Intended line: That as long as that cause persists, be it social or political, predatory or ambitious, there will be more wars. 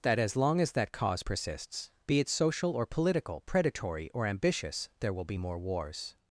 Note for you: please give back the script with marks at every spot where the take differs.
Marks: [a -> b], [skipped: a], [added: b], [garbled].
That as long as that cause persists, be it social or political, predatory or ambitious, there will be more wars.